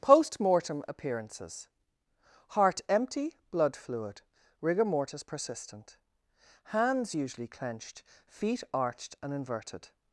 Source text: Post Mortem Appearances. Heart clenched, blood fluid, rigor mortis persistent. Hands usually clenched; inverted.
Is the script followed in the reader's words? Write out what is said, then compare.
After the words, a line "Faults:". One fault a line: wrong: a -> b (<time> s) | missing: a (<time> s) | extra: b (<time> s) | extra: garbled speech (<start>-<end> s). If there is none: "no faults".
Post Mortem Appearances. Heart empty, blood fluid, rigor mortis persistent. Hands usually clenched; feet arched and inverted.
Faults:
wrong: clenched -> empty (2.9 s)
extra: feet arched and (8.2 s)